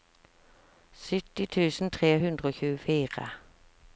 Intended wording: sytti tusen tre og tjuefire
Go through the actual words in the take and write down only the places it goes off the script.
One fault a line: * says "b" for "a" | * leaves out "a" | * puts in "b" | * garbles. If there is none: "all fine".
* puts in "hundre"